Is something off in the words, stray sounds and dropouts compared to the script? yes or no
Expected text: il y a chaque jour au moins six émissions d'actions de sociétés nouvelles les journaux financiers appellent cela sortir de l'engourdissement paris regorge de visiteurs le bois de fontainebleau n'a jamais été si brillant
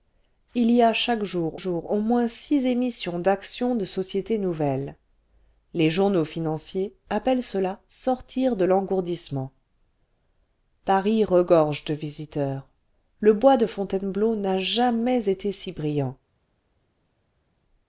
yes